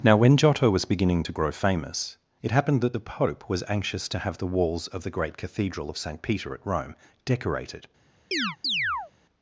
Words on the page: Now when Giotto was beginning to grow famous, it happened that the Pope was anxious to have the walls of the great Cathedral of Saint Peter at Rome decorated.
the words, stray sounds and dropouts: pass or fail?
fail